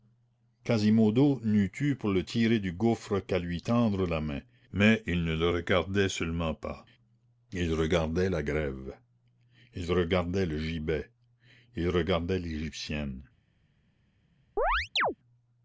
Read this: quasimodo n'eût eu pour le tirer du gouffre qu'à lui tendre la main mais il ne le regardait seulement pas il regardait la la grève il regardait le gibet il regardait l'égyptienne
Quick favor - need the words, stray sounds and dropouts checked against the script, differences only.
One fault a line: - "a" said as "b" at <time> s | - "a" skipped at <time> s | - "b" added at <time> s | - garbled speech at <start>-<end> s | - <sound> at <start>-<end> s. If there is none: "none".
- "la" skipped at 8.4 s
- chirp at 14.6-15.2 s